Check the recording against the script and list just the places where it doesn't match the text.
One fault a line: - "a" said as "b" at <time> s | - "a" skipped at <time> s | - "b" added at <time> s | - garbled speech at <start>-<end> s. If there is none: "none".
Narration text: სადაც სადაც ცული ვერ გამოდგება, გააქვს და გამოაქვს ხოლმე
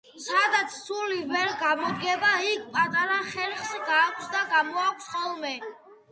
- "სადაც" skipped at 0.8 s
- "იქ პატარა ხერხს" added at 2.5 s